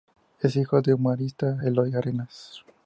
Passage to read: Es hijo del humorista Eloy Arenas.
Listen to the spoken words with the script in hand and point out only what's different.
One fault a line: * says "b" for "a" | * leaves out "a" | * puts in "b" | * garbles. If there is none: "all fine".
all fine